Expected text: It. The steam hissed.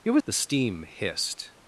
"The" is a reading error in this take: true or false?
false